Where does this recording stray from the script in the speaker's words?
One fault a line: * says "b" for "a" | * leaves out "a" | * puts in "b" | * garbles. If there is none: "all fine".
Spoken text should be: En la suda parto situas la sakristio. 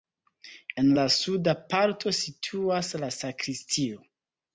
all fine